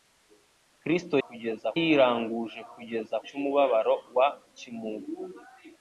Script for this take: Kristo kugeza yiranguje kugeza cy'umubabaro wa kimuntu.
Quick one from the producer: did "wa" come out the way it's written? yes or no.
yes